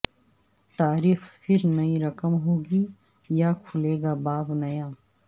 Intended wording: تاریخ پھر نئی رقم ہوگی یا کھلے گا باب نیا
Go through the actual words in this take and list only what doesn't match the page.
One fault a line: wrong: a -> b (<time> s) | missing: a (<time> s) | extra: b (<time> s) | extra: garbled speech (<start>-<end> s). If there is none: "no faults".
no faults